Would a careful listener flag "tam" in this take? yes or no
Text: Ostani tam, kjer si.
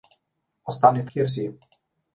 yes